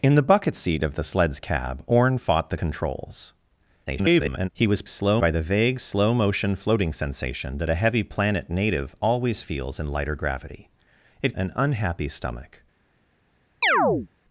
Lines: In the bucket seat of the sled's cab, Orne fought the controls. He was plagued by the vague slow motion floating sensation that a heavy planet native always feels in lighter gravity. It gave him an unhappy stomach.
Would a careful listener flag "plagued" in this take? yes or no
yes